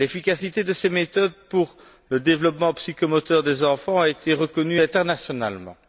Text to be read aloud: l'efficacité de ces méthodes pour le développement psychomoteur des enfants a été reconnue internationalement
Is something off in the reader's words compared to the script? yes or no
no